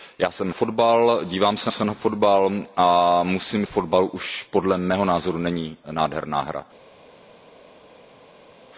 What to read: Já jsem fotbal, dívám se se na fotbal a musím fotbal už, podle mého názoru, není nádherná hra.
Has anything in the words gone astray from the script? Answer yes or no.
no